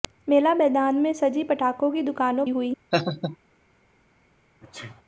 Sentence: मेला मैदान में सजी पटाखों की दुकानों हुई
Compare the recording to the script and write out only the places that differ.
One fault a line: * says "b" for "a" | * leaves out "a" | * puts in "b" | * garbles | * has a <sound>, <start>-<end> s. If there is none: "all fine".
* has a laugh, 2.9-3.4 s
* has a sneeze, 4.6-5.0 s